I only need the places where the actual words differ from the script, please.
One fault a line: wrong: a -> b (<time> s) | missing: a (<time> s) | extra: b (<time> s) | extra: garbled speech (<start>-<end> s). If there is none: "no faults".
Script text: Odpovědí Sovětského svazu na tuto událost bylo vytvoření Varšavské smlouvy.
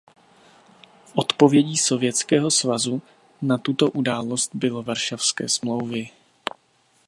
missing: vytvoření (4.8 s)